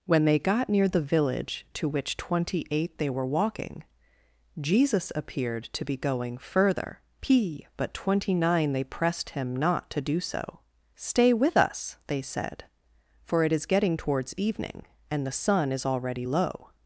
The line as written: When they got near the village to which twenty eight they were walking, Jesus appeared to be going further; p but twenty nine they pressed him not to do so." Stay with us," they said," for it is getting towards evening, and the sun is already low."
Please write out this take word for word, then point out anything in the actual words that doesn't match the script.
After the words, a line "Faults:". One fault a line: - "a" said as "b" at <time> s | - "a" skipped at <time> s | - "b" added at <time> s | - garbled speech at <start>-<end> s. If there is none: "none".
When they got near the village to which twenty eight they were walking, Jesus appeared to be going further; p but twenty nine they pressed him not to do so." Stay with us," they said," for it is getting towards evening, and the sun is already low."
Faults:
none